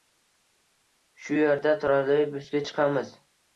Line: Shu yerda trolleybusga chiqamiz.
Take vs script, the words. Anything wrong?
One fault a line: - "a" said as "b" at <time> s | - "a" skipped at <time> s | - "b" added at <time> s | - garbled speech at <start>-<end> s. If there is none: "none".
none